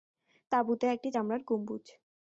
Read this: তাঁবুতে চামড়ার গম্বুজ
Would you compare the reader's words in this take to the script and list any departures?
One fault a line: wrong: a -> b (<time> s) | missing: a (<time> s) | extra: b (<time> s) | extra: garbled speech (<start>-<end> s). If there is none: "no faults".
extra: একটি (0.9 s)